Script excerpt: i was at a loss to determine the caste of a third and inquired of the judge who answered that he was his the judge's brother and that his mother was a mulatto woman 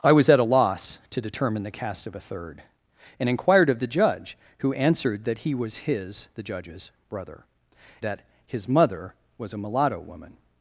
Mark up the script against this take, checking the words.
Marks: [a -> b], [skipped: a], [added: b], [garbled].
i was at a loss to determine the caste of a third and inquired of the judge who answered that he was his the judge's brother [skipped: and] that his mother was a mulatto woman